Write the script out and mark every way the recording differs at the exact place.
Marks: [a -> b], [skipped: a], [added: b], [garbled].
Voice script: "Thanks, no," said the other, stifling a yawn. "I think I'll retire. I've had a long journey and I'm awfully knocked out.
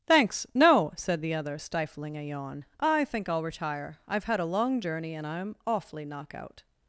"Thanks, no," said the other, stifling a yawn. "I think I'll retire. I've had a long journey and I'm awfully [knocked -> knock] out.